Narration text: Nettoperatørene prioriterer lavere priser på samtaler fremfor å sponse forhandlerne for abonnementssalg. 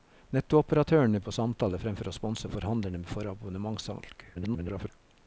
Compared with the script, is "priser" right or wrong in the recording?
wrong